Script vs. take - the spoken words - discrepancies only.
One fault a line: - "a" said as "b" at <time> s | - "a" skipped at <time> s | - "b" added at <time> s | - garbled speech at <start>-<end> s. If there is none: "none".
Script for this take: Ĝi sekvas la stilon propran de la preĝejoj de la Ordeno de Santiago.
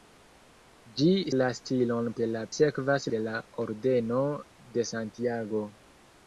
- "sekvas" skipped at 1.1 s
- "propran" skipped at 2.1 s
- "preĝejoj" said as "sekvas" at 2.6 s